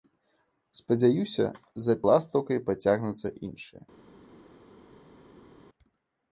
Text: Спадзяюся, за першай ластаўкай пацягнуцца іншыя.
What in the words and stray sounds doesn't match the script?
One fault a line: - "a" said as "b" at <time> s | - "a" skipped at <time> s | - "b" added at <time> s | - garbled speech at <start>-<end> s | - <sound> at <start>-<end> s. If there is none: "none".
- "першай" skipped at 1.9 s